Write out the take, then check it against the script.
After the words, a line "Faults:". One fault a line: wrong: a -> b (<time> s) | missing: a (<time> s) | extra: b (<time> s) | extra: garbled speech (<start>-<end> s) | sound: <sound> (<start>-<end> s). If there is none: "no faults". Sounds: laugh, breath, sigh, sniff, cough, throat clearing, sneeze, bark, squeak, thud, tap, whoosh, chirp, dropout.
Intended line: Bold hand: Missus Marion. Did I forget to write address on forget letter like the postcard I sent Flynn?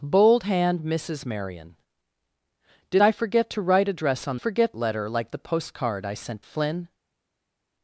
Bold hand: Missus Marion. Did I forget to write address on forget letter like the postcard I sent Flynn?
Faults:
no faults